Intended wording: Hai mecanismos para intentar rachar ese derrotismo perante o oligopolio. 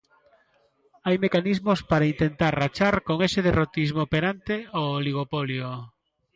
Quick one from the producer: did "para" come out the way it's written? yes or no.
yes